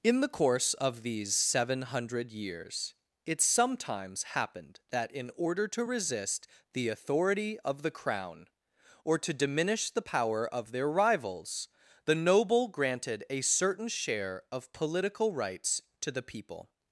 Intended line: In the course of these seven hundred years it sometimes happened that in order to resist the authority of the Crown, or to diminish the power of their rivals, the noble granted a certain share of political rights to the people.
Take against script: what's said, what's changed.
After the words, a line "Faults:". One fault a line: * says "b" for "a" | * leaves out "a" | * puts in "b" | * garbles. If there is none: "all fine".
In the course of these seven hundred years it sometimes happened that in order to resist the authority of the Crown, or to diminish the power of their rivals, the noble granted a certain share of political rights to the people.
Faults:
all fine